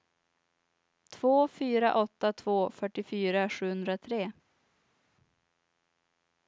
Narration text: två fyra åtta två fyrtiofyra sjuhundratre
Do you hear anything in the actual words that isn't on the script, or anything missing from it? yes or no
no